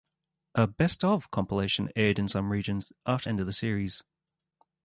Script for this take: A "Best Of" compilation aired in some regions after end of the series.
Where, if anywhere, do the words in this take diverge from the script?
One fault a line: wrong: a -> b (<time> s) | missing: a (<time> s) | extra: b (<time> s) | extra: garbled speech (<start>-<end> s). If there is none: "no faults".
no faults